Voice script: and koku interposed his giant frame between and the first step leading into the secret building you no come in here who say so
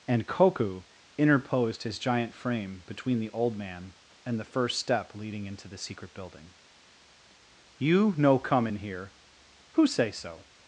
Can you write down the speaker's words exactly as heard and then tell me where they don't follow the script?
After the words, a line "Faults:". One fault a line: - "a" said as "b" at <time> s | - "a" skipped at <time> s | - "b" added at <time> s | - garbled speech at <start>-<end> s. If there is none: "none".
and koku interposed his giant frame between the old man and the first step leading into the secret building you no come in here who say so
Faults:
- "the old man" added at 3.2 s